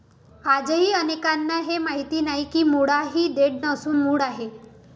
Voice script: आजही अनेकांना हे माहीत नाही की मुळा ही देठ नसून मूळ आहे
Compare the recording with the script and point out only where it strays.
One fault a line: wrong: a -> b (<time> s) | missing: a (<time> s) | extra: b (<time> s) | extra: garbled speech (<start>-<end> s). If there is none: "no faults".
no faults